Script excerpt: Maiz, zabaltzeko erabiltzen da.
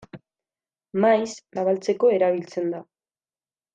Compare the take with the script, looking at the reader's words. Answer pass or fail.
pass